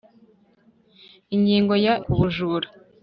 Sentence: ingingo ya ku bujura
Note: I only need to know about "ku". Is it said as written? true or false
true